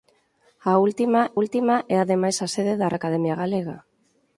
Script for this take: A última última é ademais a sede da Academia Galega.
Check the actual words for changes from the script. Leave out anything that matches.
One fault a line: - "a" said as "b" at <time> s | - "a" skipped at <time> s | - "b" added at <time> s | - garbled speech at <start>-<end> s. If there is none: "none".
none